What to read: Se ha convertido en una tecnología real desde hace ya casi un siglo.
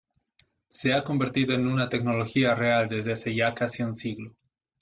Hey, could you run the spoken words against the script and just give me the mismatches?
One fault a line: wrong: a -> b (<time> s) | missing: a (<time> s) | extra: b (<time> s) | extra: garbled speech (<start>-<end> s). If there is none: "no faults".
no faults